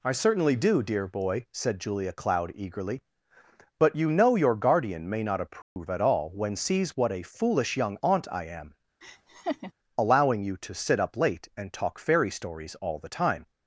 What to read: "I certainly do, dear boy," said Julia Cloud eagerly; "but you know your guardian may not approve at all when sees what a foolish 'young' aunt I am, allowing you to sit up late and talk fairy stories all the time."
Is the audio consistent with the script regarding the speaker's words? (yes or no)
yes